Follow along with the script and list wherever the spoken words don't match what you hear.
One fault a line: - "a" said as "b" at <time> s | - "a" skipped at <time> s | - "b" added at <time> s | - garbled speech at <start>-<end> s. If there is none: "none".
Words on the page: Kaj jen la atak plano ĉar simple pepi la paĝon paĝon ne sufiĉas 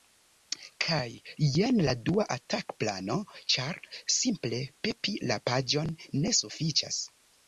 - "dua" added at 2.1 s
- "paĝon" skipped at 5.9 s